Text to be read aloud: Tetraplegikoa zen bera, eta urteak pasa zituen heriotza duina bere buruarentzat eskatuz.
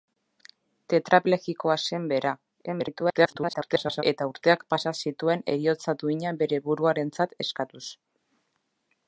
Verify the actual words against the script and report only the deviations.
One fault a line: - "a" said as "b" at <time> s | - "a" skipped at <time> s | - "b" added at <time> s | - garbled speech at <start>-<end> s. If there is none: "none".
- garbled speech at 2.7-4.0 s